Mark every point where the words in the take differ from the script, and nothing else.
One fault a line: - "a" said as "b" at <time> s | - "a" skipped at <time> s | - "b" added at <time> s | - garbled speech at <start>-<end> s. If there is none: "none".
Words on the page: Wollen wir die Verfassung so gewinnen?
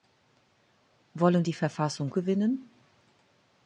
- "wir" skipped at 1.4 s
- "so" skipped at 2.1 s